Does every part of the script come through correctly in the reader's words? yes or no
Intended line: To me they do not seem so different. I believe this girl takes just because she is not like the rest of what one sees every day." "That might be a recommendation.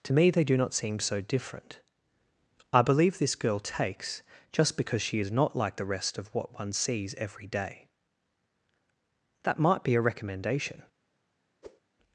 yes